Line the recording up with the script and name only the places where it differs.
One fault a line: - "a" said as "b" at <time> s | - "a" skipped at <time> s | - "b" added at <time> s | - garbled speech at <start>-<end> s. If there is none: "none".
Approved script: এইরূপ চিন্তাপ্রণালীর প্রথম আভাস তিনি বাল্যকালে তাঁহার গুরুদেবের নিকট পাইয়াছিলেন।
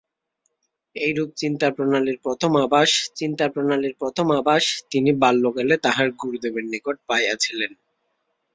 - "চিন্তাপ্রণালীর প্রথম আভাস" added at 3.1 s